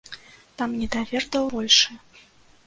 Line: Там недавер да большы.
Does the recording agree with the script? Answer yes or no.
yes